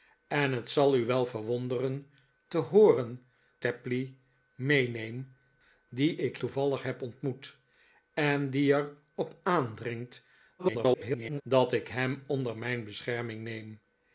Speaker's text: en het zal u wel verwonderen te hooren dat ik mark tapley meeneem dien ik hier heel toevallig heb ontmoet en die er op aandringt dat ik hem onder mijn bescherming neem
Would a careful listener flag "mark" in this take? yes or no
yes